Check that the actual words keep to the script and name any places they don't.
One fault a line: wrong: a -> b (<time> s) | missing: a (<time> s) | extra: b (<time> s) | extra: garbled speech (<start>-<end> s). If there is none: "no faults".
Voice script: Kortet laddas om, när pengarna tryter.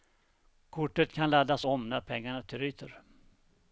extra: kan (1.1 s)